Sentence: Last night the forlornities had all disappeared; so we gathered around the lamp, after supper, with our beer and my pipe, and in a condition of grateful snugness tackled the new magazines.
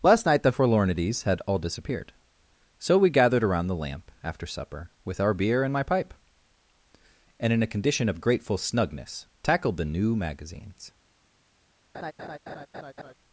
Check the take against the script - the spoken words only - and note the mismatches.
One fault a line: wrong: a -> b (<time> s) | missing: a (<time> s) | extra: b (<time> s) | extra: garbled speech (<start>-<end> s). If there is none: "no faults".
no faults